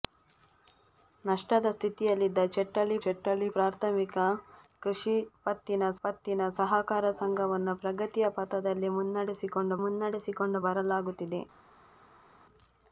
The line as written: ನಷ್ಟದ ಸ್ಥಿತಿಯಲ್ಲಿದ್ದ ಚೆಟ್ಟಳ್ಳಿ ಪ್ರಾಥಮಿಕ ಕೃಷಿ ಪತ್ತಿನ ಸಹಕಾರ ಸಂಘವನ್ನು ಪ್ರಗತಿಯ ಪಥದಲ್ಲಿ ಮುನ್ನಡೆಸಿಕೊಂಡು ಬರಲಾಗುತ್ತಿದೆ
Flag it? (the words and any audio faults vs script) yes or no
yes